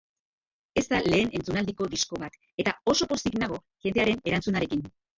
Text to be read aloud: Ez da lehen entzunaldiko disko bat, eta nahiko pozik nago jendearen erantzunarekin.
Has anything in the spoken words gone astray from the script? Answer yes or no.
yes